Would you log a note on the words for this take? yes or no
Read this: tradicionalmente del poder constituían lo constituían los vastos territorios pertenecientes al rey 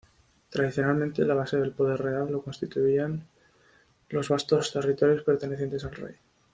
yes